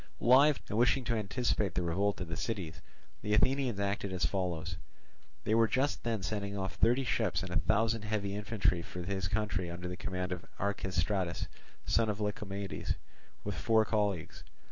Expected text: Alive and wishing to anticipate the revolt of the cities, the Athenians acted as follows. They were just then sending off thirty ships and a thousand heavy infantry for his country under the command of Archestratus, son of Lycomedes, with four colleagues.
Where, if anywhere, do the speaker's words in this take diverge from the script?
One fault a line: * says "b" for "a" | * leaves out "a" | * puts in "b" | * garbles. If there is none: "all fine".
all fine